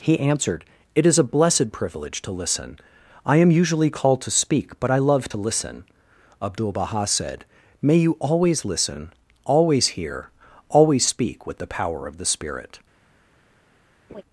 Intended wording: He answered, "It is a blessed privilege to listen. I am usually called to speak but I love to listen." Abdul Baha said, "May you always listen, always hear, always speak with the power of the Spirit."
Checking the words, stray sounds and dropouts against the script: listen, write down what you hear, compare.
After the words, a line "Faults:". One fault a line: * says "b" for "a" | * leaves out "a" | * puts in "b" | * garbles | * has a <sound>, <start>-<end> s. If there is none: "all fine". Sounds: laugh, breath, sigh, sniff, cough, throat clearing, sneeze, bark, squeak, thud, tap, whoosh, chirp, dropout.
He answered, "It is a blessed privilege to listen. I am usually called to speak but I love to listen." Abdul Baha said, "May you always listen, always hear, always speak with the power of the Spirit."
Faults:
* has a laugh, 14.1-14.2 s